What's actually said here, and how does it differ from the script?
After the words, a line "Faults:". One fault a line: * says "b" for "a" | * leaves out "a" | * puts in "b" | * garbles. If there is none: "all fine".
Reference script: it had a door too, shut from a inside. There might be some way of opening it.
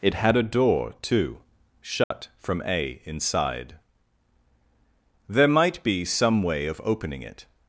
it had a door too, shut from a inside. There might be some way of opening it.
Faults:
all fine